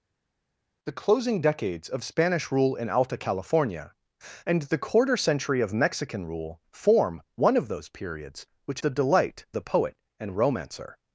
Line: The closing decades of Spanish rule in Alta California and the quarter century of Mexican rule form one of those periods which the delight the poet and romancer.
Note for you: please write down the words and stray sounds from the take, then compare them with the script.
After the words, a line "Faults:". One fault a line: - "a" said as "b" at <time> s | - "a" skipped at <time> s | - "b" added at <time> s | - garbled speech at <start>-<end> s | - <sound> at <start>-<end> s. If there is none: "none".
The closing decades of Spanish rule in Alta California and the quarter century of Mexican rule form one of those periods which the delight the poet and romancer.
Faults:
none